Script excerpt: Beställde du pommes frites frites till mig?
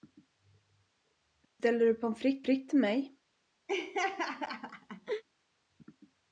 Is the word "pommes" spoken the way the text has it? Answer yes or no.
yes